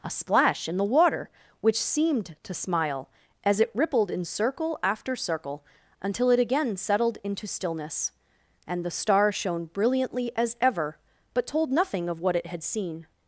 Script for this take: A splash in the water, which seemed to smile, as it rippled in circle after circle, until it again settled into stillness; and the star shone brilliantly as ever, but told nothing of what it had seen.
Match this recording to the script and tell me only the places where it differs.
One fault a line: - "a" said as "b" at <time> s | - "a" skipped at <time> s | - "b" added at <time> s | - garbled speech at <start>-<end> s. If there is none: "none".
none